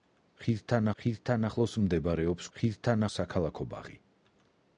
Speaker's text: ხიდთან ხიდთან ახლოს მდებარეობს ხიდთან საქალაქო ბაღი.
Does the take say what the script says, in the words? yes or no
yes